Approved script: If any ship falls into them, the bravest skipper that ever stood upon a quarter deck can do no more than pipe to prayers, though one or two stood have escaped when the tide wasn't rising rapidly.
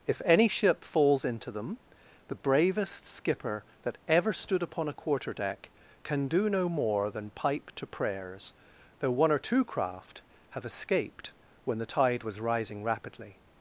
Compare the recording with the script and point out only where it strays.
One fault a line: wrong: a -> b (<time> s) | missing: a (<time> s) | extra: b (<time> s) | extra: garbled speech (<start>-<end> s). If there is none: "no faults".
wrong: stood -> craft (9.6 s)
wrong: wasn't -> was (12.2 s)